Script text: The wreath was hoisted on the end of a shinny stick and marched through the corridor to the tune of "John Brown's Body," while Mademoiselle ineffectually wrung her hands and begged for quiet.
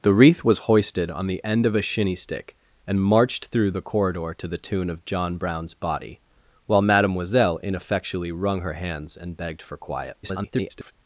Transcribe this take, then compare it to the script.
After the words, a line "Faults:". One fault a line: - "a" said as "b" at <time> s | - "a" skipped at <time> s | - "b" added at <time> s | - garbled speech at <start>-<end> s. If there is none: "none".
The wreath was hoisted on the end of a shinny stick and marched through the corridor to the tune of "John Brown's Body," while Mademoiselle ineffectually wrung her hands and begged for quiet. [garbled]
Faults:
- garbled speech at 10.2-10.9 s